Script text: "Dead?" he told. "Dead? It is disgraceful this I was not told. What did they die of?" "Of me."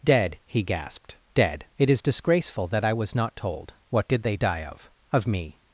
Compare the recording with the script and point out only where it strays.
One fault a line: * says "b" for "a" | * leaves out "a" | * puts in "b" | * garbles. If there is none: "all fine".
* says "gasped" for "told"
* says "that" for "this"